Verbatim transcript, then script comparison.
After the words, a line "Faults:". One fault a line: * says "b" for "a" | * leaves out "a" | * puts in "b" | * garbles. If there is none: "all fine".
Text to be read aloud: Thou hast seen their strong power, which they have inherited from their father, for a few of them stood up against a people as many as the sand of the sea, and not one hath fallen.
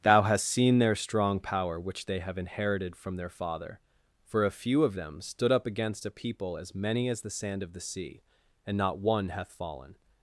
Thou hast seen their strong power, which they have inherited from their father, for a few of them stood up against a people as many as the sand of the sea, and not one hath fallen.
Faults:
all fine